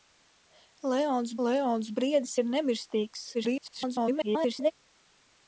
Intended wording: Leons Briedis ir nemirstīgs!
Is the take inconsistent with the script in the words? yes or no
yes